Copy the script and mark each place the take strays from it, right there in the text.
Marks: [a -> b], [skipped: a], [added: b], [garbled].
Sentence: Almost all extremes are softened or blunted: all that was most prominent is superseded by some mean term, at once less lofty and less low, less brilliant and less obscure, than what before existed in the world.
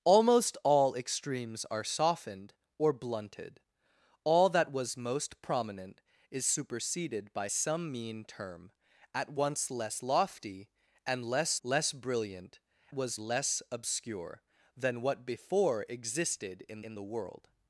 Almost all extremes are softened or blunted: all that was most prominent is superseded by some mean term, at once less lofty and less [skipped: low,] less brilliant [and -> was] less obscure, than what before existed in [added: in] the world.